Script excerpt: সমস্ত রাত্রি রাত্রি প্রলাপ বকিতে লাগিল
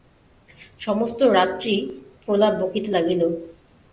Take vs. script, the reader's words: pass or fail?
fail